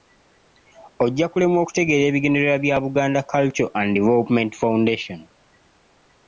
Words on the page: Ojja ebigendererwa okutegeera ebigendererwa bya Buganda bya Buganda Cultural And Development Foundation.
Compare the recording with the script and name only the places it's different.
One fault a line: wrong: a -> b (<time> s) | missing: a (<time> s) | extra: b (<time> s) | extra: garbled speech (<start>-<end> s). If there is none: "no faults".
wrong: ebigendererwa -> kulemwa (1.3 s)
missing: bya Buganda (3.2 s)